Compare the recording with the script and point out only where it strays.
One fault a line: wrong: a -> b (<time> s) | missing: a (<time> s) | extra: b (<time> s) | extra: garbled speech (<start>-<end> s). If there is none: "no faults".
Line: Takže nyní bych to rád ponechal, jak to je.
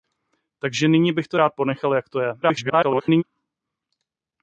extra: garbled speech (2.4-3.2 s)